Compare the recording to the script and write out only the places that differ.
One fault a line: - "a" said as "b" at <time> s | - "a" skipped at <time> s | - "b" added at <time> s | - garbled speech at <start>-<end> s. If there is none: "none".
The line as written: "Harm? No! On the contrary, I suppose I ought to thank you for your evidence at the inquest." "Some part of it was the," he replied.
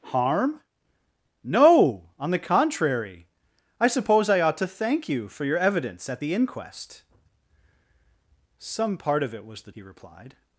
none